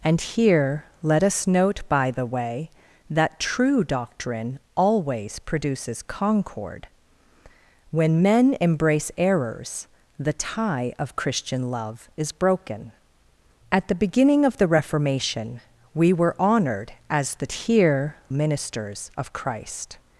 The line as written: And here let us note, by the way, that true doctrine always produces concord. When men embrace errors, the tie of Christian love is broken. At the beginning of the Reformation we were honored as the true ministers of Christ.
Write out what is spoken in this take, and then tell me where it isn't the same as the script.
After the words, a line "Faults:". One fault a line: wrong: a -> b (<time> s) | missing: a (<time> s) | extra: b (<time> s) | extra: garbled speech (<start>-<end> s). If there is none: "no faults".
And here let us note, by the way, that true doctrine always produces concord. When men embrace errors, the tie of Christian love is broken. At the beginning of the Reformation we were honored as the here ministers of Christ.
Faults:
wrong: true -> here (17.5 s)